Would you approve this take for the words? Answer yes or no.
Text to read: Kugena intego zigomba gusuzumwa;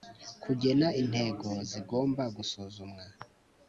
yes